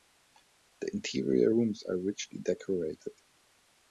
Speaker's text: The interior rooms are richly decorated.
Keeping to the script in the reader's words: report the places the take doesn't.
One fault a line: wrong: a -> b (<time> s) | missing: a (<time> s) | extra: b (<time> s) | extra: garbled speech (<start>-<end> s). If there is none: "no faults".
no faults